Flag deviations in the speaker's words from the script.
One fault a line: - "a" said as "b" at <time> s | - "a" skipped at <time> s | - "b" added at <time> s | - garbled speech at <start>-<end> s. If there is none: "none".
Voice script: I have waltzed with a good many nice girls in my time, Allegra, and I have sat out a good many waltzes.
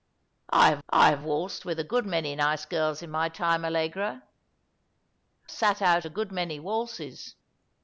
- "I have" added at 0.9 s
- "and I have" skipped at 4.2 s